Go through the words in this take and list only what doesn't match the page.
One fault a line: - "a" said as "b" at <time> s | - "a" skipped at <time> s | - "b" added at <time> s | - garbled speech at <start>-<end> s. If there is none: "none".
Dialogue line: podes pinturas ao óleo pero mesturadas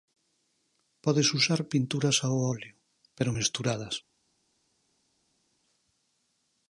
- "usar" added at 1.4 s